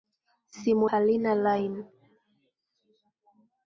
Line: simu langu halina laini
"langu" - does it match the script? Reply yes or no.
no